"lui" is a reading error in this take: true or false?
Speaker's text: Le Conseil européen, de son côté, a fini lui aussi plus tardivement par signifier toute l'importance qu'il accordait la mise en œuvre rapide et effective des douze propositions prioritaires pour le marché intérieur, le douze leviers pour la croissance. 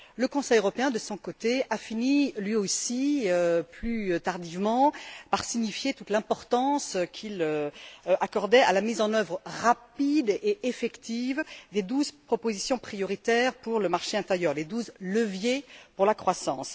false